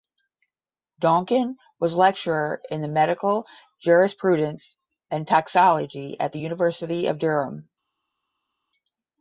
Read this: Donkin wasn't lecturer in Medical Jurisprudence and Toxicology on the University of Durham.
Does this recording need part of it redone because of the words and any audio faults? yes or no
yes